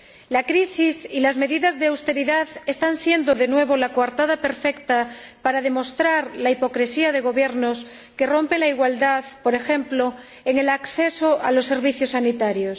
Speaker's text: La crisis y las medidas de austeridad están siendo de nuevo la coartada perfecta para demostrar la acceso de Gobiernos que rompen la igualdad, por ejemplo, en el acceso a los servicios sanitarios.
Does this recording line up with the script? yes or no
no